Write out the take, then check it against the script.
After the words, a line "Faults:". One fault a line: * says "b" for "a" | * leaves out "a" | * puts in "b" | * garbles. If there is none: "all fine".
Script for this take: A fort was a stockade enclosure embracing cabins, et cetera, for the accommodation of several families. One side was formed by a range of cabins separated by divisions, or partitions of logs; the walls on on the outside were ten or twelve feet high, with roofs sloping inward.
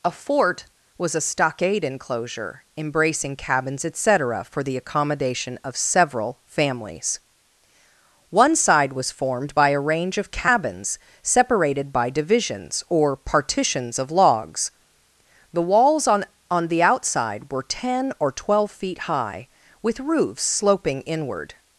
A fort was a stockade enclosure embracing cabins, et cetera, for the accommodation of several families. One side was formed by a range of cabins separated by divisions, or partitions of logs; the walls on on the outside were ten or twelve feet high, with roofs sloping inward.
Faults:
all fine